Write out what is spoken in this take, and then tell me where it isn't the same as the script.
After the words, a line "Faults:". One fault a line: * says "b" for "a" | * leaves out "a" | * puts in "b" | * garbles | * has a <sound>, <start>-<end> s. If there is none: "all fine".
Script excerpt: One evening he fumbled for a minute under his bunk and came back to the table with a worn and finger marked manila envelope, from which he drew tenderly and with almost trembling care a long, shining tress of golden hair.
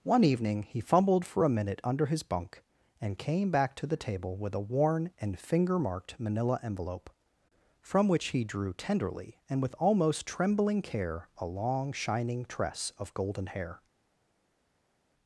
One evening he fumbled for a minute under his bunk and came back to the table with a worn and finger marked manila envelope, from which he drew tenderly and with almost trembling care a long, shining tress of golden hair.
Faults:
all fine